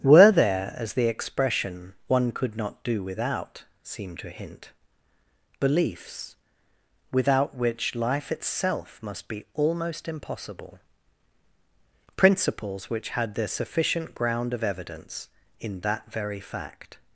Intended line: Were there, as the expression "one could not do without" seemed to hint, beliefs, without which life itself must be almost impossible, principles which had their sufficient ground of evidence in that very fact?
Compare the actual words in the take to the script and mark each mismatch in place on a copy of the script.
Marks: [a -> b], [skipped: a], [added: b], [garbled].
Were there, as the expression "one could not do without" seemed to hint, beliefs, without which life itself must be almost impossible, principles which had their sufficient ground of evidence in that very fact?